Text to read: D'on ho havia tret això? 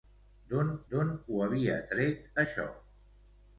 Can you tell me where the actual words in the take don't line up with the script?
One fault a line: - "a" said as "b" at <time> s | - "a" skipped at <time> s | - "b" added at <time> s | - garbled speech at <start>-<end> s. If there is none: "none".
- "d'on" added at 0.9 s